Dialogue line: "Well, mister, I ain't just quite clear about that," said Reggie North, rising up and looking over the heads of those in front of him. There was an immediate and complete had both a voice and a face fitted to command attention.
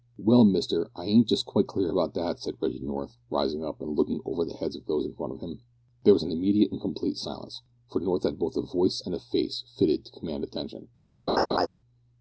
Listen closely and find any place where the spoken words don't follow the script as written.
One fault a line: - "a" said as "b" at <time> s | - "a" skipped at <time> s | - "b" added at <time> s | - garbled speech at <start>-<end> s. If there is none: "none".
- "silence for North" added at 7.2 s